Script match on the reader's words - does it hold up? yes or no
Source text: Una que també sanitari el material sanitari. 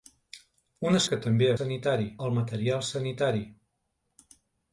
yes